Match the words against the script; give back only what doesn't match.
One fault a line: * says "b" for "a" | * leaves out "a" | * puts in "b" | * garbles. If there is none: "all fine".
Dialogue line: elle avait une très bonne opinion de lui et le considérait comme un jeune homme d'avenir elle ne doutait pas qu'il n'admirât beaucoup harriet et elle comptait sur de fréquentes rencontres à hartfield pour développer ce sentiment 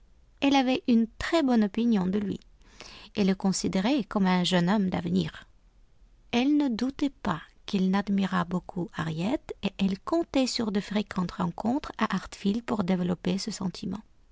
all fine